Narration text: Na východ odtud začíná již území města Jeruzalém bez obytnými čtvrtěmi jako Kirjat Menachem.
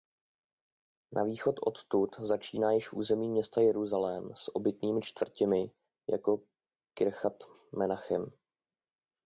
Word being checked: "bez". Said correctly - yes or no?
no